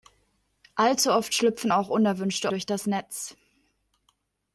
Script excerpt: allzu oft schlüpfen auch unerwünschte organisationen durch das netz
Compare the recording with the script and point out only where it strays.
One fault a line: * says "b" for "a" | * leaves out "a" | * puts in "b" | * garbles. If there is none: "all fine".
* leaves out "organisationen"